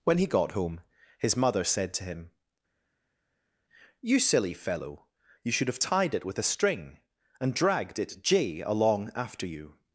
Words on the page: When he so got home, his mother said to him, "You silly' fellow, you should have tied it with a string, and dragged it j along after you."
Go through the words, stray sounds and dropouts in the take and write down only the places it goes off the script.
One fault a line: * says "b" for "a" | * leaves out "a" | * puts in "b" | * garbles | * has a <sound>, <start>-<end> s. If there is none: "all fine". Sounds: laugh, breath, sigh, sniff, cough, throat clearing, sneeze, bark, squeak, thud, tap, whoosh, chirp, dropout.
* leaves out "so"